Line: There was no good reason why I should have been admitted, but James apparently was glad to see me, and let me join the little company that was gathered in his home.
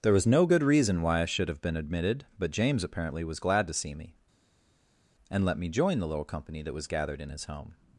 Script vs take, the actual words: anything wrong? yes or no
no